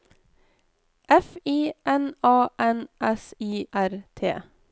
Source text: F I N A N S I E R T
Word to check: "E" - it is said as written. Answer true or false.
false